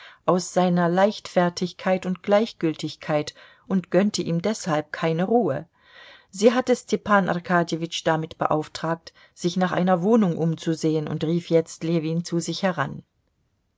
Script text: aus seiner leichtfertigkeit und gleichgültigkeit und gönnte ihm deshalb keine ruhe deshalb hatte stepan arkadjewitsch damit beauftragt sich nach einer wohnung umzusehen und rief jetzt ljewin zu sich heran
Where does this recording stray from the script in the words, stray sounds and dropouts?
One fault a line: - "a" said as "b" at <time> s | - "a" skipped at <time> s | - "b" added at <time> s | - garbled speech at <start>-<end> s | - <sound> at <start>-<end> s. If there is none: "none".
- "deshalb" said as "sie" at 6.3 s